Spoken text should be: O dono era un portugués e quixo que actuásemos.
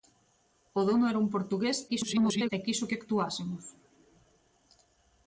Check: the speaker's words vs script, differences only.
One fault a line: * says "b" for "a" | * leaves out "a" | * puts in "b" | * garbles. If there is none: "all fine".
* garbles